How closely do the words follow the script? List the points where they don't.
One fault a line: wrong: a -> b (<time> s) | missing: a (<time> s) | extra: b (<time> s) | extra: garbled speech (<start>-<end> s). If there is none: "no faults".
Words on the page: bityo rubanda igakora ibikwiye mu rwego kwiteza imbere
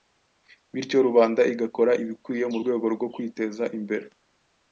extra: rwo (2.9 s)